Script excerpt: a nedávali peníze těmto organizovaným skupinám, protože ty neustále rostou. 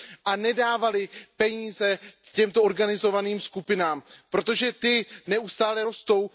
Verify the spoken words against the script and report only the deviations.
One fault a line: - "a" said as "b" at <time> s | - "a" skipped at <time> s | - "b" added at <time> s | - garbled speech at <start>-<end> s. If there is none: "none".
none